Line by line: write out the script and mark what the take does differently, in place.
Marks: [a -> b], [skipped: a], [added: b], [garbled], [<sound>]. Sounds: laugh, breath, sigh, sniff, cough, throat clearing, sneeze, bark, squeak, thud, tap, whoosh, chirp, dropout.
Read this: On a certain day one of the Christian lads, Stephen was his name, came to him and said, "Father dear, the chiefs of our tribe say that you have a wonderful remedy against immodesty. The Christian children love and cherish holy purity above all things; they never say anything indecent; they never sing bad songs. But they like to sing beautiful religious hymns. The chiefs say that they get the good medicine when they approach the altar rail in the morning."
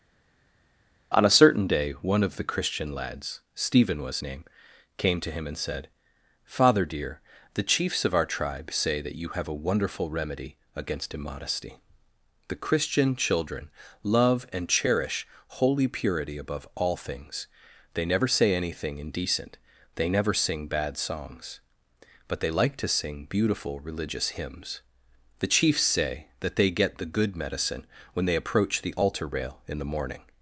On a certain day one of the Christian lads, Stephen was [skipped: his] name, came to him and said, "Father dear, the chiefs of our tribe say that you have a wonderful remedy against immodesty. The Christian children love and cherish holy purity above all things; they never say anything indecent; they never sing bad songs. But they like to sing beautiful religious hymns. The chiefs say that they get the good medicine when they approach the altar rail in the morning."